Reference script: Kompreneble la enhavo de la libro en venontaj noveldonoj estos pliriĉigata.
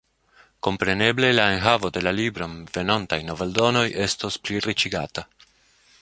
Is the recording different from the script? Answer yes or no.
no